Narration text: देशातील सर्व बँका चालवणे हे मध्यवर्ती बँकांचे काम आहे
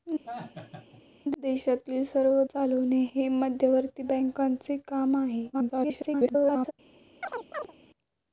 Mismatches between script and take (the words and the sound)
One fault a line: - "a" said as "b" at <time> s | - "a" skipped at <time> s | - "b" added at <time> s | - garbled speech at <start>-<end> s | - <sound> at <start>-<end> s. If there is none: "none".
- laugh at 0.3-1.0 s
- "बँका" skipped at 2.4 s
- garbled speech at 5.5-6.7 s
- chirp at 7.2-7.7 s